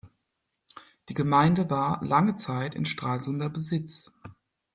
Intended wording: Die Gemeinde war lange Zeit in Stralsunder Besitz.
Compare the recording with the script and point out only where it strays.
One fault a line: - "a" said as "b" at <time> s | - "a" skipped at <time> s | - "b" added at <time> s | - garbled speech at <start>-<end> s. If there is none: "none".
none